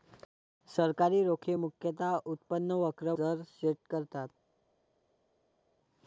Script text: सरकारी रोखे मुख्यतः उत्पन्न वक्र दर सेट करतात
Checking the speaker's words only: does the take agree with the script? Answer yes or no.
yes